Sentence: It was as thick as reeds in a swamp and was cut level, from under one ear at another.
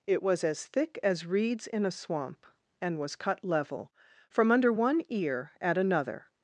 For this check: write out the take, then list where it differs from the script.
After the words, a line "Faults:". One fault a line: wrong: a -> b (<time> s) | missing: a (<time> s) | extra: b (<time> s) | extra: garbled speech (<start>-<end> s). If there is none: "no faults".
It was as thick as reeds in a swamp and was cut level, from under one ear at another.
Faults:
no faults